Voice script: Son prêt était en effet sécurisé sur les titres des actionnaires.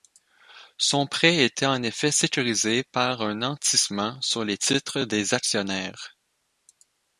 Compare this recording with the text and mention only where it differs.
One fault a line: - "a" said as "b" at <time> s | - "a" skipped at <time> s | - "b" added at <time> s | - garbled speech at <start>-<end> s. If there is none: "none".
- "par un nantissement" added at 2.9 s